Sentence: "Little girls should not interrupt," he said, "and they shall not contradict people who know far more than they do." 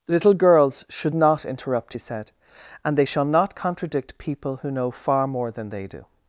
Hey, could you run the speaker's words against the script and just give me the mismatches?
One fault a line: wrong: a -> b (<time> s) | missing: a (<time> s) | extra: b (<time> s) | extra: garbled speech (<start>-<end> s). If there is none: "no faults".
no faults